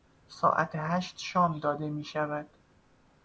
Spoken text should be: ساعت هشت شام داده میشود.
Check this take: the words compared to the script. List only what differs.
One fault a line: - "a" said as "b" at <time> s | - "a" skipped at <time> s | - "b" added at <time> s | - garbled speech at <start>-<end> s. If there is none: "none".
none